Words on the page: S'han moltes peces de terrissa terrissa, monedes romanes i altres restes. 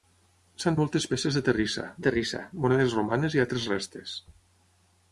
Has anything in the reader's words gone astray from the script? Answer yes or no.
no